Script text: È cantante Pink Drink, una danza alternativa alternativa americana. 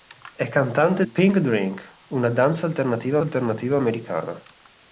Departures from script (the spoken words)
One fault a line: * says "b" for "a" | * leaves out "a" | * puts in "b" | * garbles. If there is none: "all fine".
all fine